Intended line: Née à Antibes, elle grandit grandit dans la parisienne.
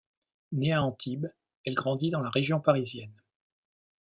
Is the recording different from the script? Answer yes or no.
yes